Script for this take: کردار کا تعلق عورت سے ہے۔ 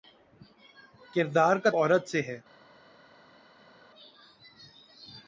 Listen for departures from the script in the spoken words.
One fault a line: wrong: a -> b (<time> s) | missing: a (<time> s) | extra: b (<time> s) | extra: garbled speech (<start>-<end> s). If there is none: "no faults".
missing: تعلق (1.7 s)